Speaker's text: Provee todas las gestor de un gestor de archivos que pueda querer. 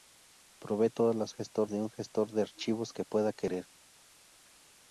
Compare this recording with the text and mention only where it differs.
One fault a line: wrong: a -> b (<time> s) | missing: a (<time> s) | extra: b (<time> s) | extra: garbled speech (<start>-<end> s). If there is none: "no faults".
no faults